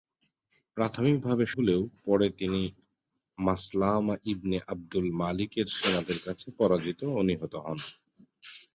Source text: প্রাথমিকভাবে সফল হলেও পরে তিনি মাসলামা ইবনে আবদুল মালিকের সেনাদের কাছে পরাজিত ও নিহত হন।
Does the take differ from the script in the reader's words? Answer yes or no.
yes